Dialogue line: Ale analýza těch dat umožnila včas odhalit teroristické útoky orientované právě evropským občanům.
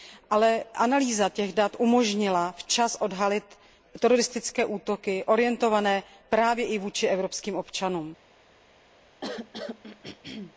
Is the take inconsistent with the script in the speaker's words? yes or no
yes